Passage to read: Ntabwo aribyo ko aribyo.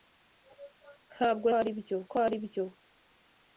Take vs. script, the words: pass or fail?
pass